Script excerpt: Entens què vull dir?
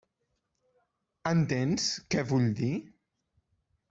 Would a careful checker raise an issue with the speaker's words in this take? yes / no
no